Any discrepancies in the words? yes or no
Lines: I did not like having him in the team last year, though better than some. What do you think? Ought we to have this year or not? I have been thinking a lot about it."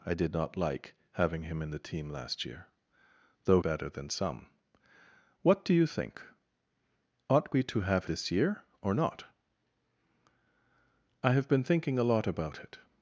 no